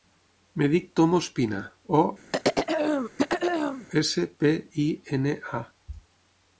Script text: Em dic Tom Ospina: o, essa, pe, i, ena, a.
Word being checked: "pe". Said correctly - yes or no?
yes